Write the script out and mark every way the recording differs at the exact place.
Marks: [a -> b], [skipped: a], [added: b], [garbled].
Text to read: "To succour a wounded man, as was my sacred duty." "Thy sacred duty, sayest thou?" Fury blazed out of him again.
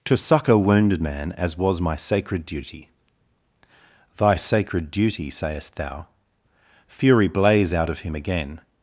"To succour [skipped: a] wounded man, as was my sacred duty." "Thy sacred duty, sayest thou?" Fury [blazed -> blaze] out of him again.